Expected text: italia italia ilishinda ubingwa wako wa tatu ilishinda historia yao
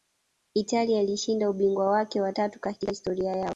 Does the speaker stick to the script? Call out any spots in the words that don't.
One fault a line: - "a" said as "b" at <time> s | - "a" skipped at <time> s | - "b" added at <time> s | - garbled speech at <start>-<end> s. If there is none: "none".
- "italia" skipped at 1.0 s
- "wako" said as "wake" at 1.9 s
- "ilishinda" said as "katika" at 2.6 s